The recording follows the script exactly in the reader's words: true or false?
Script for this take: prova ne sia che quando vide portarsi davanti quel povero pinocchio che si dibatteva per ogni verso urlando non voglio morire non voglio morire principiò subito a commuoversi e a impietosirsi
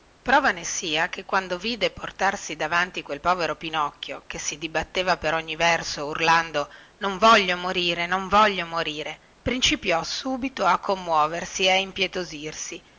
true